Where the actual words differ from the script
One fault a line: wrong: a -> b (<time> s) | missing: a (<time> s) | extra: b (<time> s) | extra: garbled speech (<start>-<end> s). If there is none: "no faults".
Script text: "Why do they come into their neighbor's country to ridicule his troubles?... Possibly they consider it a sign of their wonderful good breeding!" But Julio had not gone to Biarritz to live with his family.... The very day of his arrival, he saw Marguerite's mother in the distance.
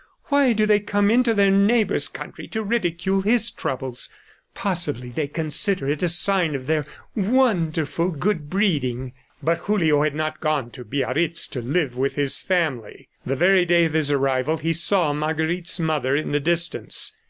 no faults